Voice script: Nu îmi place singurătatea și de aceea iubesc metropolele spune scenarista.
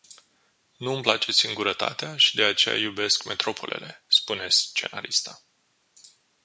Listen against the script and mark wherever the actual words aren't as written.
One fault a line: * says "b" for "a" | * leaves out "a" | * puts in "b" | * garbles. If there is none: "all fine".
all fine